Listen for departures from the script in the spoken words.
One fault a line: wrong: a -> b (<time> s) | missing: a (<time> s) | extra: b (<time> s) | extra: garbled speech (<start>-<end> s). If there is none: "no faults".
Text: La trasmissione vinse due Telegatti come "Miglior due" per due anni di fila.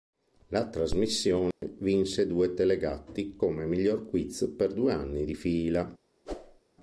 wrong: due -> quiz (4.1 s)